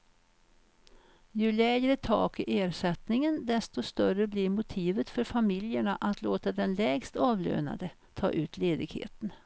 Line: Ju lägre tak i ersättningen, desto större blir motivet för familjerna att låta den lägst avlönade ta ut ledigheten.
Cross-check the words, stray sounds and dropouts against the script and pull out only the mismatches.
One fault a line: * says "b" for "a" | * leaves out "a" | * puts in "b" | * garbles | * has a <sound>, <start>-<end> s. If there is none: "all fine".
all fine